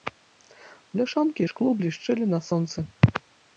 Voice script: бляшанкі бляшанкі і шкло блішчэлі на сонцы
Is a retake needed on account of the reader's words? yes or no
yes